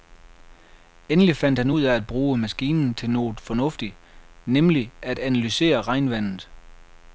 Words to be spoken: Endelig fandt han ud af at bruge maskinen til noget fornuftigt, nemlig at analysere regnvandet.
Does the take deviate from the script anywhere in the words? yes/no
no